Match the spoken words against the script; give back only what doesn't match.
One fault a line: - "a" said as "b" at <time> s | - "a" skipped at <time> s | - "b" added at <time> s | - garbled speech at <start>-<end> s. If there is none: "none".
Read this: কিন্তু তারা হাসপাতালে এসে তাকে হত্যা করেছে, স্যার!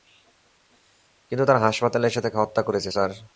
none